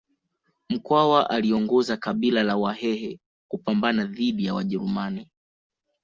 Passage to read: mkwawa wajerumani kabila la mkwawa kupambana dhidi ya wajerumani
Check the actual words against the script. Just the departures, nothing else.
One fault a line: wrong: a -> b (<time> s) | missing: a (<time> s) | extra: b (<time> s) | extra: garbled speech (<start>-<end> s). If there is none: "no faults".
wrong: wajerumani -> aliongoza (1.3 s)
wrong: mkwawa -> wahehe (2.6 s)